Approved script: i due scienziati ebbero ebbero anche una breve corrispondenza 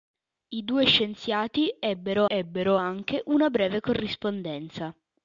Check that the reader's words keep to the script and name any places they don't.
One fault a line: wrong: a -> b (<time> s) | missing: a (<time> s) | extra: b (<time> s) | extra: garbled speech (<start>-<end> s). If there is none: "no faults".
no faults